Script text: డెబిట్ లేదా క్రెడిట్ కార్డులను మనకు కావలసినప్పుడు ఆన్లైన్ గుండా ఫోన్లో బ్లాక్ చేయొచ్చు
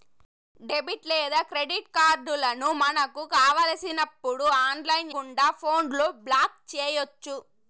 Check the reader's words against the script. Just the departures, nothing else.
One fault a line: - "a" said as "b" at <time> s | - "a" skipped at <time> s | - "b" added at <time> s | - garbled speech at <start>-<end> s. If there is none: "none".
none